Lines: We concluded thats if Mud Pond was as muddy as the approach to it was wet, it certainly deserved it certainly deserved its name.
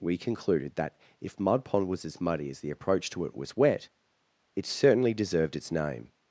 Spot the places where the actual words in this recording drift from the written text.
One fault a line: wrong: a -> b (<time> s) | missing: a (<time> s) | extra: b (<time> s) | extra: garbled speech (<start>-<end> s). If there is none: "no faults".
wrong: thats -> that (0.8 s)
missing: it certainly deserved (5.5 s)